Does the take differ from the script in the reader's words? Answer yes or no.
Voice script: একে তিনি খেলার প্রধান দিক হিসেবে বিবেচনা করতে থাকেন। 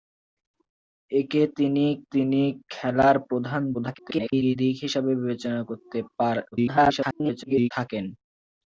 yes